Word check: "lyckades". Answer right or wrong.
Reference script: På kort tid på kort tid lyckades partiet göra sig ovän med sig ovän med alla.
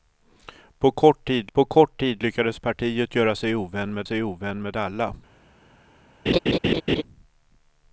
right